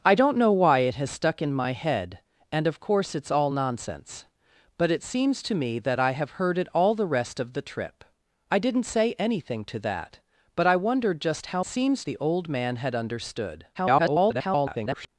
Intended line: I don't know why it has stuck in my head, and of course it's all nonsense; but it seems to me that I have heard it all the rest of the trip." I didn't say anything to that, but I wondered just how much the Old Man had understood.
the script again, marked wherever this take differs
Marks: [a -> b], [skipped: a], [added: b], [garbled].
I don't know why it has stuck in my head, and of course it's all nonsense; but it seems to me that I have heard it all the rest of the trip." I didn't say anything to that, but I wondered just how [much -> seems] the Old Man had understood. [garbled]